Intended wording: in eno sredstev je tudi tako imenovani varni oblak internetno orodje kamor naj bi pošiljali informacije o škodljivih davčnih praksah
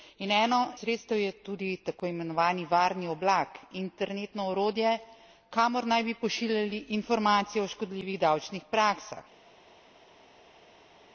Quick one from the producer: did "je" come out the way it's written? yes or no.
yes